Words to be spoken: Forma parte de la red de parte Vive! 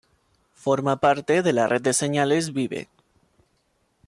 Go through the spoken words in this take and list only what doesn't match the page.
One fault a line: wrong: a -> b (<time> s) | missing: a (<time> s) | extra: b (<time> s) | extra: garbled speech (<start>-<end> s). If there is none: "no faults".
wrong: parte -> señales (1.9 s)